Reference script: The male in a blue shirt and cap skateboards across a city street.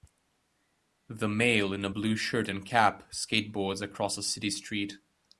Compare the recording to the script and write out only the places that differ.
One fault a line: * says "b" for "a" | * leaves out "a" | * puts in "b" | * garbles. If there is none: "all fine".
all fine